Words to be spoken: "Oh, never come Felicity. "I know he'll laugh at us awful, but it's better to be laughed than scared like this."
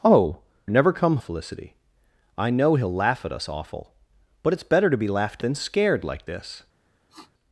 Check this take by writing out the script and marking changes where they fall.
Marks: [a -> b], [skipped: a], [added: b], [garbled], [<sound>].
"Oh, never come Felicity. "I know he'll laugh at us awful, but it's better to be laughed than scared like this." [sniff]